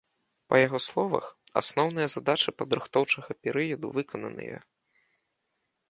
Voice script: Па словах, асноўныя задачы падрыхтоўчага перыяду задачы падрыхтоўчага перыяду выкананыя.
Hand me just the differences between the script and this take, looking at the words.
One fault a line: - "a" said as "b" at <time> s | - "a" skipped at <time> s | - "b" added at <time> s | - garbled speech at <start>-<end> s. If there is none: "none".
- "яго" added at 0.7 s
- "задачы падрыхтоўчага перыяду" skipped at 3.9 s